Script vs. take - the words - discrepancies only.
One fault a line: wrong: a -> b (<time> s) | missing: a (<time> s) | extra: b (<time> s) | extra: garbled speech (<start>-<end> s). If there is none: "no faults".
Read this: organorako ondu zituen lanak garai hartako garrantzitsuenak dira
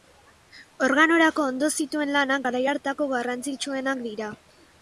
no faults